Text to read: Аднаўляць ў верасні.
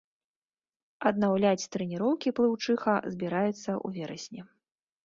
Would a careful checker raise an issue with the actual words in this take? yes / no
yes